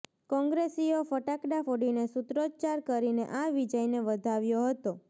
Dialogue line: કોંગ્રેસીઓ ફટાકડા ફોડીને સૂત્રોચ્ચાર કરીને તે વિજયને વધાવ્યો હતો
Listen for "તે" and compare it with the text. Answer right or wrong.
wrong